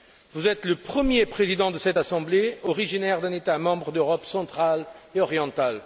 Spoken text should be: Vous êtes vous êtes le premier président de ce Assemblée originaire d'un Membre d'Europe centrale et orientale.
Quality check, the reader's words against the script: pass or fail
fail